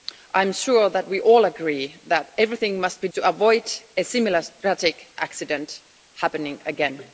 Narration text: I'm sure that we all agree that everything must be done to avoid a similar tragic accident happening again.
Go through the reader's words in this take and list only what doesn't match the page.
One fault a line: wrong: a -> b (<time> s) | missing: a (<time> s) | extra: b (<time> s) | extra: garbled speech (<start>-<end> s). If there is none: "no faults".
missing: done (3.1 s)